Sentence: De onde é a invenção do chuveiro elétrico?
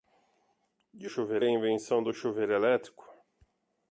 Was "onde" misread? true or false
true